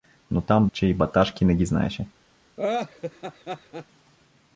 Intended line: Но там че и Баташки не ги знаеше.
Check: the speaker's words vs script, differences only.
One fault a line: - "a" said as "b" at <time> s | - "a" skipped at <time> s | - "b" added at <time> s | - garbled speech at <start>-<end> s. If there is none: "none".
none